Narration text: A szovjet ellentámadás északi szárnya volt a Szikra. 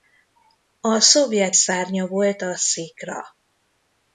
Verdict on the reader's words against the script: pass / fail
fail